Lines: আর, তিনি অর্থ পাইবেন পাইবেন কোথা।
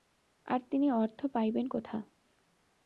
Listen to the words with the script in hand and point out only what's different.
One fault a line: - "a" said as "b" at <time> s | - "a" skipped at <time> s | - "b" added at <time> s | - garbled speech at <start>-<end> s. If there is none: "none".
- "পাইবেন" skipped at 1.6 s